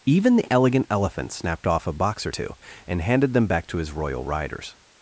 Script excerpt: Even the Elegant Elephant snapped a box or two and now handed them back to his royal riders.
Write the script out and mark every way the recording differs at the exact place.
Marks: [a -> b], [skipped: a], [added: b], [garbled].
Even the Elegant Elephant snapped [added: off] a box or two and [skipped: now] handed them back to his royal riders.